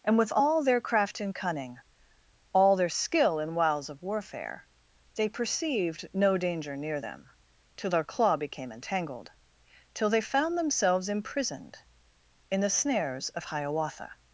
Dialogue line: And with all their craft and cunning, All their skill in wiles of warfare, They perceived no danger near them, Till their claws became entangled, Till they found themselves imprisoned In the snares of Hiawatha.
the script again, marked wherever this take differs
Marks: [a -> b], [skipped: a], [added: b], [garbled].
And with all their craft and cunning, All their skill in wiles of warfare, They perceived no danger near them, Till their [claws -> claw] became entangled, Till they found themselves imprisoned In the snares of Hiawatha.